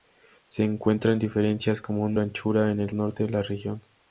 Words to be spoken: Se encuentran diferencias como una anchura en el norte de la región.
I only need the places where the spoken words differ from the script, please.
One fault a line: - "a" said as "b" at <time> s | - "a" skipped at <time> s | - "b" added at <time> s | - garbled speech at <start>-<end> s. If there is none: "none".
none